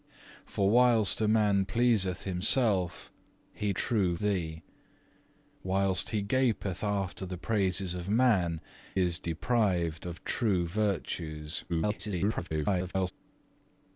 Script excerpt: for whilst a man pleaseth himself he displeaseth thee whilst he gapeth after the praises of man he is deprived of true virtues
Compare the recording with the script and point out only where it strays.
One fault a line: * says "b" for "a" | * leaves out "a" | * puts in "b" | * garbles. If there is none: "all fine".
* says "true" for "displeaseth"
* leaves out "he"
* garbles